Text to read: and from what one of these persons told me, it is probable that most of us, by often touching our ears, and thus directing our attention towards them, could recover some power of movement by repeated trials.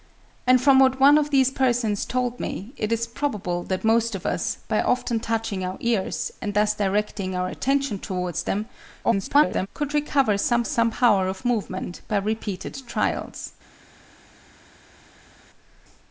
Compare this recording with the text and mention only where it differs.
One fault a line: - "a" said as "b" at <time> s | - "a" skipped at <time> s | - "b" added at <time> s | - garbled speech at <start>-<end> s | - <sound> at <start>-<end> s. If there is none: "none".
- garbled speech at 9.0-9.7 s
- "some" added at 10.6 s